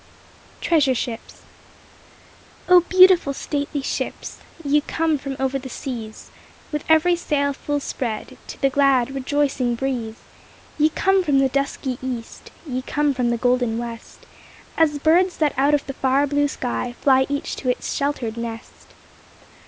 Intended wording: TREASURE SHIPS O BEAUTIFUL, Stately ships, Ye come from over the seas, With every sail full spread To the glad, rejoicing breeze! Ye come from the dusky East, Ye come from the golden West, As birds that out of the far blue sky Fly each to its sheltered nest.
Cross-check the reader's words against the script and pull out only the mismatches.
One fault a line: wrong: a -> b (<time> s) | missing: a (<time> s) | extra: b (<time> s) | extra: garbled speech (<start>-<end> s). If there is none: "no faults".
no faults